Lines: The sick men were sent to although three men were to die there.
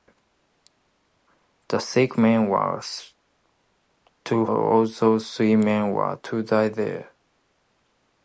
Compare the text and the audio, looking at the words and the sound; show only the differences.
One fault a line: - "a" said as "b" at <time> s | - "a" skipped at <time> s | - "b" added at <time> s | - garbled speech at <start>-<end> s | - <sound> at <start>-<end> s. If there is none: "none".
none